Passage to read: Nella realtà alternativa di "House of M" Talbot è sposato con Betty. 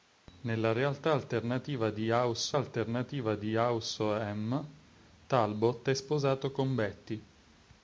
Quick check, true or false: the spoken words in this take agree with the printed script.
false